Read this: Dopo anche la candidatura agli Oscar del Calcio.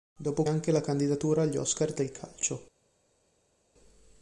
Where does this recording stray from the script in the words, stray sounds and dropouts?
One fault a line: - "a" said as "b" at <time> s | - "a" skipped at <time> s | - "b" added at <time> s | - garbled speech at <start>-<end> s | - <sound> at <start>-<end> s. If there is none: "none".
none